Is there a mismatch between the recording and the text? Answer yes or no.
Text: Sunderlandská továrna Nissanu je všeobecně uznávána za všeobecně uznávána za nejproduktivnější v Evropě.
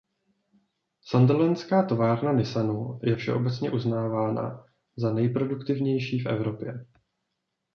yes